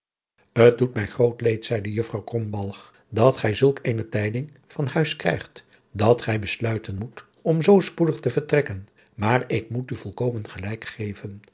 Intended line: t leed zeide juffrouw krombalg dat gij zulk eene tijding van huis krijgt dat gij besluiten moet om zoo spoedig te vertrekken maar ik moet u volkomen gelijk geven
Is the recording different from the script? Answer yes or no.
yes